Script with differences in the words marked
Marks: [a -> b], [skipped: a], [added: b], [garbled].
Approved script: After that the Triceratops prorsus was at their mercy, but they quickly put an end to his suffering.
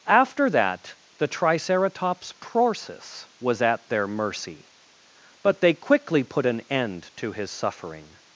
After that the Triceratops prorsus was at their mercy, but they quickly put an end to his suffering.